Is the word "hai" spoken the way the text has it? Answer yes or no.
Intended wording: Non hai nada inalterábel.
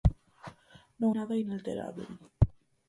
no